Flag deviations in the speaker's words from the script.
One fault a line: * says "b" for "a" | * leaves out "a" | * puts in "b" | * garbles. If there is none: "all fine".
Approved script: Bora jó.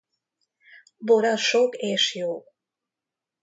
* puts in "sok és"